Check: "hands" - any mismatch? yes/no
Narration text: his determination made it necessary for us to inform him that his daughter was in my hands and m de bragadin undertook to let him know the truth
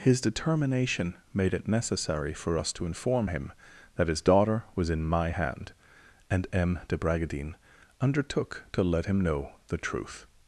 yes